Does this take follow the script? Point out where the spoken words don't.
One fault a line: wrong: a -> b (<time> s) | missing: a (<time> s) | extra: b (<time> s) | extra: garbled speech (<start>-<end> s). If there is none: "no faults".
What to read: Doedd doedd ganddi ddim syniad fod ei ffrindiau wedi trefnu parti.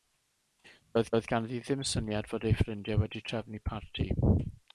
no faults